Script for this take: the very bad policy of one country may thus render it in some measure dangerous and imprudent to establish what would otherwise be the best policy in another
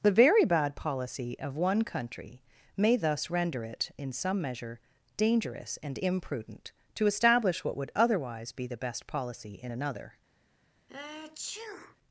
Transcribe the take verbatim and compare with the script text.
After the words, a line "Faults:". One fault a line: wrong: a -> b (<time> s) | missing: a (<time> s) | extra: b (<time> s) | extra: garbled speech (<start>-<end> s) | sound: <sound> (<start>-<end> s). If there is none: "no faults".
the very bad policy of one country may thus render it in some measure dangerous and imprudent to establish what would otherwise be the best policy in another
Faults:
sound: sneeze (10.9-12.0 s)